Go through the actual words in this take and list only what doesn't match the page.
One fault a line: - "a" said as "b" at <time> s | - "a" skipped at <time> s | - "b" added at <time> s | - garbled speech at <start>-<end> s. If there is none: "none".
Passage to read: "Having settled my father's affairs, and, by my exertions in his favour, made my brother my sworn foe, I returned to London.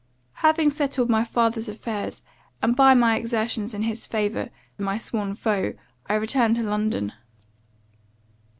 - "made my brother" skipped at 4.5 s